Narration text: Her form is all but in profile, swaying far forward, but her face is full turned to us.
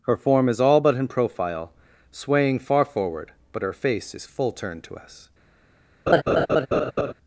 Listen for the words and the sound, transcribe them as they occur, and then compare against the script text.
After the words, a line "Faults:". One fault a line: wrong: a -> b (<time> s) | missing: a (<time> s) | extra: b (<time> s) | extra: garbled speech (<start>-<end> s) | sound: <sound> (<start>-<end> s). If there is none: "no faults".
Her form is all but in profile, swaying far forward, but her face is full turned to us.
Faults:
sound: laugh (6.1-7.1 s)